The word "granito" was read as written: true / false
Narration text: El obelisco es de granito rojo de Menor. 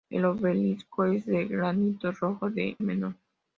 true